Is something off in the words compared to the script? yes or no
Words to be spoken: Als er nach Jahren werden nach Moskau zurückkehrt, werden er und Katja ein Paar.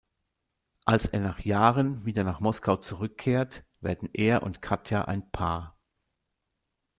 yes